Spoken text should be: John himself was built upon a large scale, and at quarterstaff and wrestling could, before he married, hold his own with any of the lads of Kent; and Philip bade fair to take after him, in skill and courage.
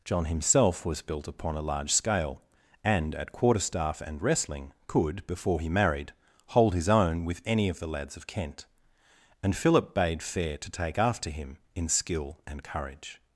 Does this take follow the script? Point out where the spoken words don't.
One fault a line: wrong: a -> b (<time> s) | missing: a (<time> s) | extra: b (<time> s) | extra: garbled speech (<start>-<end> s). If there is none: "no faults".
no faults